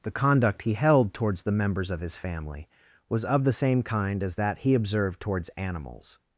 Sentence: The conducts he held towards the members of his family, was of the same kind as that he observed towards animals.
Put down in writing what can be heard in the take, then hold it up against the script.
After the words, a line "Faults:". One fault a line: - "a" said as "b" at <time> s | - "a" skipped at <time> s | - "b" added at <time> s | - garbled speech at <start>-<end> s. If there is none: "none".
The conduct he held towards the members of his family, was of the same kind as that he observed towards animals.
Faults:
- "conducts" said as "conduct" at 0.1 s